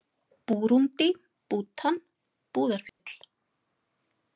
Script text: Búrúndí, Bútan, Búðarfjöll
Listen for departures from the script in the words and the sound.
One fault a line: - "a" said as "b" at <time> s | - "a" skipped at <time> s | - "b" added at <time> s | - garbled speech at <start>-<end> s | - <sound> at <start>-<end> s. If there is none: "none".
- dropout at 2.9-3.0 s